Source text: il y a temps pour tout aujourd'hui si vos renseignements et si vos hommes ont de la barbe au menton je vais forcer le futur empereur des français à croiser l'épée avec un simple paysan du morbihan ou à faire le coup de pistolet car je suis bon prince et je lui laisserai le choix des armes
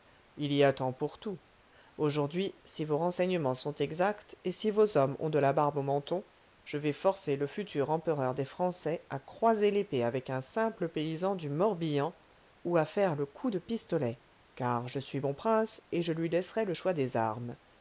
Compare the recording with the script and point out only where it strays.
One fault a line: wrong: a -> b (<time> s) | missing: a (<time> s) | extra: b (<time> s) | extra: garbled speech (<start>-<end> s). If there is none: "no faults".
extra: sont exacts (3.5 s)